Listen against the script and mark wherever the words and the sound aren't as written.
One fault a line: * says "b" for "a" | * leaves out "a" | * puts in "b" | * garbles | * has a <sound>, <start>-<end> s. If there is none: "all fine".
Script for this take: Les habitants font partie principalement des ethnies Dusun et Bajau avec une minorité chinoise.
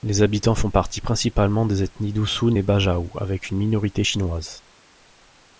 all fine